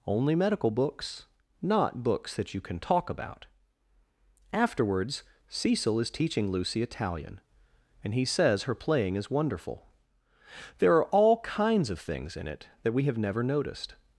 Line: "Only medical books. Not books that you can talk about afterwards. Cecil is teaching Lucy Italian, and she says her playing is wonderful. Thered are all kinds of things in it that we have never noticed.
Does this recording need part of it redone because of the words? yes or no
yes